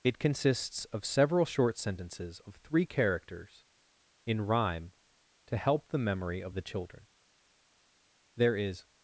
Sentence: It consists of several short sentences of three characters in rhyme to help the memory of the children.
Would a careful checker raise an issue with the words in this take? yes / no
yes